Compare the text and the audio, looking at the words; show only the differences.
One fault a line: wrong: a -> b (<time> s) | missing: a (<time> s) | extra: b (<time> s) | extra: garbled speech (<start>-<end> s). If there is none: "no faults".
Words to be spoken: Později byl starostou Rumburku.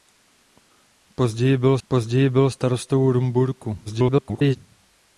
extra: později byl (1.9 s)
extra: garbled speech (3.9-4.6 s)